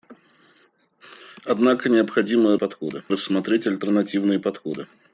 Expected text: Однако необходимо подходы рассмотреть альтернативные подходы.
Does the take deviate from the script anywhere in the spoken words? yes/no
no